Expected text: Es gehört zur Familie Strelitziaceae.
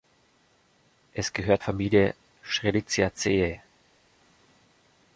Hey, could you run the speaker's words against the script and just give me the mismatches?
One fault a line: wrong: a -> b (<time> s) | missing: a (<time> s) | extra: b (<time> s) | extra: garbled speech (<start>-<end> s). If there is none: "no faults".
missing: zur (1.6 s)